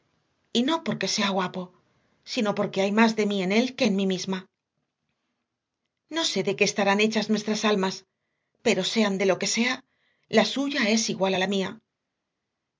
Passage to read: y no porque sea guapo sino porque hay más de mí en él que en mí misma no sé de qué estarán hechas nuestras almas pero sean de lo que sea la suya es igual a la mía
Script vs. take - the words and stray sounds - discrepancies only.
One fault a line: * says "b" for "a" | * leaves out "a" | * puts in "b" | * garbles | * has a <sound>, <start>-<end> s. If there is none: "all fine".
all fine